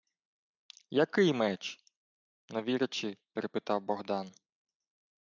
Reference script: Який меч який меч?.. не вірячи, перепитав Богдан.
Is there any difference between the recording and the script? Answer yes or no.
yes